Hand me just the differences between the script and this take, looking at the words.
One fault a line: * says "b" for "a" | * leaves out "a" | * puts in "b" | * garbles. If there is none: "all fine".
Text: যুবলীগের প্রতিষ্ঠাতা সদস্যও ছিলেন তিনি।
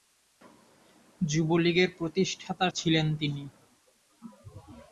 * leaves out "সদস্যও"